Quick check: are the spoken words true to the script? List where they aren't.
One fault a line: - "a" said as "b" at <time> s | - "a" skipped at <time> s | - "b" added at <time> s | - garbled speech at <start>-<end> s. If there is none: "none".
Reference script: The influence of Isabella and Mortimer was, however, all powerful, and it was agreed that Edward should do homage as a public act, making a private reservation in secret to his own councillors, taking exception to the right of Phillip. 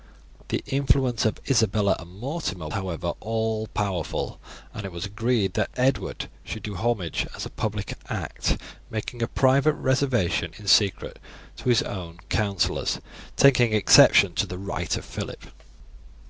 - "was" skipped at 2.7 s